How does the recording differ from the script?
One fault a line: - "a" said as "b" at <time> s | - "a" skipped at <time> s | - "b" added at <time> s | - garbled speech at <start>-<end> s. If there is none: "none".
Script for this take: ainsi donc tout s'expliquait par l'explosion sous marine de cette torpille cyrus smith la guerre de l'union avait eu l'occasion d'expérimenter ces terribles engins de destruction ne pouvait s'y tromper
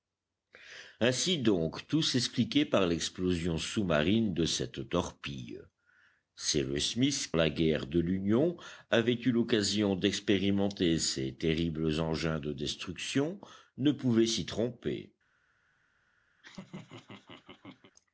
none